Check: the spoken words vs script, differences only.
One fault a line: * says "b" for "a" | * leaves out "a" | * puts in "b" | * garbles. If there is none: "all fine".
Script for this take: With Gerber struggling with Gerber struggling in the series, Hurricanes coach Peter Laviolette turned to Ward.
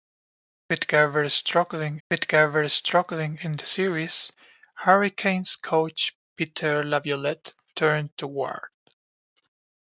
all fine